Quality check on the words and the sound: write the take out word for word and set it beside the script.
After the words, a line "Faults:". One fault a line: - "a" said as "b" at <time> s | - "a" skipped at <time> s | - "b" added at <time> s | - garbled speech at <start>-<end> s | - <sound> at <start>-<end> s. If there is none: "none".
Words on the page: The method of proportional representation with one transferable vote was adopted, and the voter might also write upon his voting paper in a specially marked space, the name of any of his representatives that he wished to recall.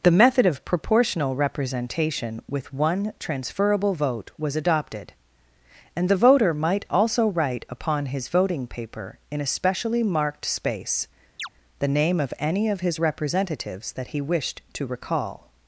The method of proportional representation with one transferable vote was adopted, and the voter might also write upon his voting paper in a specially marked space, the name of any of his representatives that he wished to recall.
Faults:
- chirp at 11.4-11.5 s